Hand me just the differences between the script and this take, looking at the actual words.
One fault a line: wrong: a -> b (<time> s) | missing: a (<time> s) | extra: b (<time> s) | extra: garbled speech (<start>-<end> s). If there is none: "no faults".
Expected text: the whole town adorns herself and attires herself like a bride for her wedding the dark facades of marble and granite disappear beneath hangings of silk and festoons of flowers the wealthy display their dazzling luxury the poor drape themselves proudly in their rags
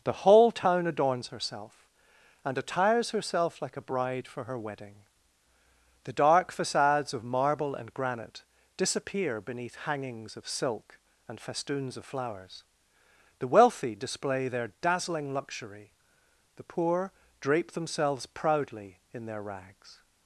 no faults